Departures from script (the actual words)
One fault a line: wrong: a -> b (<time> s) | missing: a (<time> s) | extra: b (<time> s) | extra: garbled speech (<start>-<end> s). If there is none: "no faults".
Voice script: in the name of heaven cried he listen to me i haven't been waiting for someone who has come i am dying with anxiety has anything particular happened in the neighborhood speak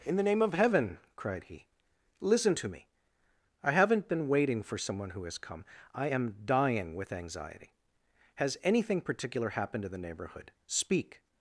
no faults